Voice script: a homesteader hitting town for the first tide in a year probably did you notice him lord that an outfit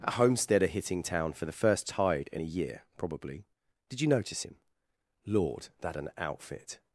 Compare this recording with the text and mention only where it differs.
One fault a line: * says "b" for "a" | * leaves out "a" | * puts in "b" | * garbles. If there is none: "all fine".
all fine